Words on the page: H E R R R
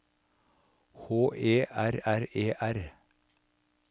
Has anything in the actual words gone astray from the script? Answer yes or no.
yes